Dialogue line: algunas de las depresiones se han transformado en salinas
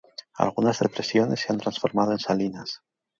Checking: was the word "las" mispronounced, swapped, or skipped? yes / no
yes